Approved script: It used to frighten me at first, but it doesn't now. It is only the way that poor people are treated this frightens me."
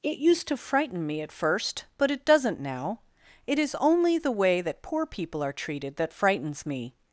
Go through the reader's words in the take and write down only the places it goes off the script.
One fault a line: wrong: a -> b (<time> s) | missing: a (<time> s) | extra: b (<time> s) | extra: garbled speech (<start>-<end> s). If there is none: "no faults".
wrong: this -> that (6.0 s)